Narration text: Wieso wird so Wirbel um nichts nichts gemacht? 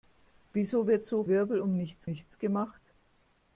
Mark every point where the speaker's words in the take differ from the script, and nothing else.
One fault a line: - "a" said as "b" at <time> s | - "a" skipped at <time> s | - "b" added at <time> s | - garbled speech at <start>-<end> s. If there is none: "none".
none